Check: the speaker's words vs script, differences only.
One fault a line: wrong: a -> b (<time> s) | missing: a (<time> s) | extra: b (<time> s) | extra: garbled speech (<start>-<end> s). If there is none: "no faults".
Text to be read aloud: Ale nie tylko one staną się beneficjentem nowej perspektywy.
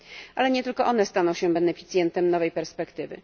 no faults